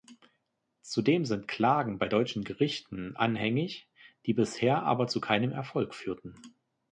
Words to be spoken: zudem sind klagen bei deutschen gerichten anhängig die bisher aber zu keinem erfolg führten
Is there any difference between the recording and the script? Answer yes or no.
no